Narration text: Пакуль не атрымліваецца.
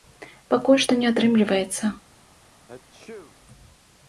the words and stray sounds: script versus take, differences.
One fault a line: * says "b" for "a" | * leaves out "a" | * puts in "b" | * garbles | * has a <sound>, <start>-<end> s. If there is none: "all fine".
* puts in "што"
* has a sneeze, 2.7-3.4 s